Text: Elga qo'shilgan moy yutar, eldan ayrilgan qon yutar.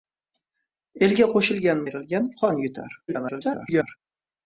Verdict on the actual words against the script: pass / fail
fail